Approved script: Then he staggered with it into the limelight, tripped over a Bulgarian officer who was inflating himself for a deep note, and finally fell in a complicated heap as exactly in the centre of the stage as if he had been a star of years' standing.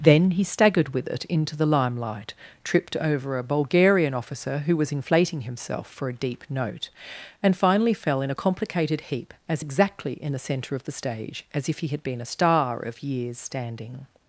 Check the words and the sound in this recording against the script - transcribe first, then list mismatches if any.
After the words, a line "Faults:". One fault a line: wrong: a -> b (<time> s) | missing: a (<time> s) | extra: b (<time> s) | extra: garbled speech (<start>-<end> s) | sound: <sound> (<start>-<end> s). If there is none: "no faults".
Then he staggered with it into the limelight, tripped over a Bulgarian officer who was inflating himself for a deep note, and finally fell in a complicated heap as exactly in the centre of the stage as if he had been a star of years' standing.
Faults:
no faults